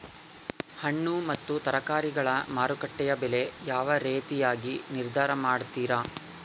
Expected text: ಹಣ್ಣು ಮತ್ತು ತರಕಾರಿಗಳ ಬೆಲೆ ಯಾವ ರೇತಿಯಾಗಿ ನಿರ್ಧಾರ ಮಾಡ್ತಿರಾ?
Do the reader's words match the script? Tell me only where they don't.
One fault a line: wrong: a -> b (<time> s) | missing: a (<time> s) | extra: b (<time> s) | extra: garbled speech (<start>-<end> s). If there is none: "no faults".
extra: ಮಾರುಕಟ್ಟೆಯ (2.5 s)